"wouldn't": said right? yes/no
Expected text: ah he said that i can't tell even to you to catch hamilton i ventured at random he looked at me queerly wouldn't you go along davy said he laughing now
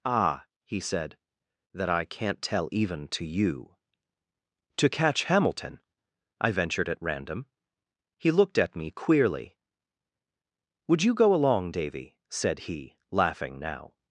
no